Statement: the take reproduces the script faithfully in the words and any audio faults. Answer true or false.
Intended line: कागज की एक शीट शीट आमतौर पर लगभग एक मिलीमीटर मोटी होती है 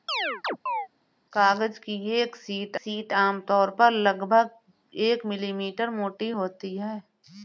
false